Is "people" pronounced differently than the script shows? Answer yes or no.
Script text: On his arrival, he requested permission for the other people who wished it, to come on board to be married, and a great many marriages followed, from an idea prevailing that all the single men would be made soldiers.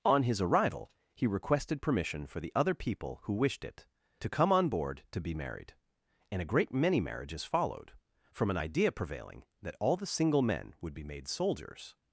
no